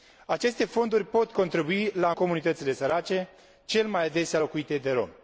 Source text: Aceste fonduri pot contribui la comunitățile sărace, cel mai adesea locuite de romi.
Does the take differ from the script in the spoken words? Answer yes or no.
no